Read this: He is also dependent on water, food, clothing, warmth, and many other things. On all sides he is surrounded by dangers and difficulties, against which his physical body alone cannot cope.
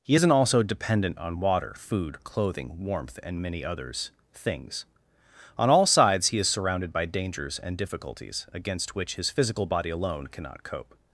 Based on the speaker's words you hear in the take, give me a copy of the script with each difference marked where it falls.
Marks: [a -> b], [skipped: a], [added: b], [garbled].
He [is -> isn't] also dependent on water, food, clothing, warmth, and many [other -> others] things. On all sides he is surrounded by dangers and difficulties, against which his physical body alone cannot cope.